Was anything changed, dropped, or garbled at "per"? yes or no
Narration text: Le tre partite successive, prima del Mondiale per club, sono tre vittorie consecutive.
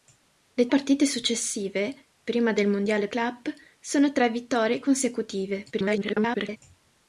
yes